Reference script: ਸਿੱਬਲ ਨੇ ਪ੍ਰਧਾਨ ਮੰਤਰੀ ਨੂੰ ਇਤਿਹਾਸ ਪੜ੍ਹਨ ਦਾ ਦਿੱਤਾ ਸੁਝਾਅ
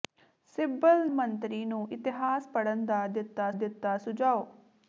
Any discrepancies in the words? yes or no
yes